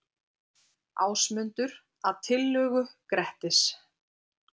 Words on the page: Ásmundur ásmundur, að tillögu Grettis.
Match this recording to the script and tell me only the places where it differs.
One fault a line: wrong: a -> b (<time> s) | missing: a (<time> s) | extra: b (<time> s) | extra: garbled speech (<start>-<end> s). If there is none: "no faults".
missing: ásmundur (1.8 s)